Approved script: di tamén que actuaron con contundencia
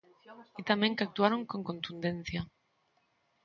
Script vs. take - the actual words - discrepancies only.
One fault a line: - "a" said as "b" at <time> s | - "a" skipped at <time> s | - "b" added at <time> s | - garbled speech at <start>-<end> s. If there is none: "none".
none